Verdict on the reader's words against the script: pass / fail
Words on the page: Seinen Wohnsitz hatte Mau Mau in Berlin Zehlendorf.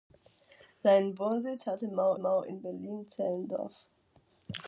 pass